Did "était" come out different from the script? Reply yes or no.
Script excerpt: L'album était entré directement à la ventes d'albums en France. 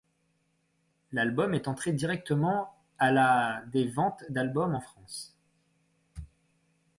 yes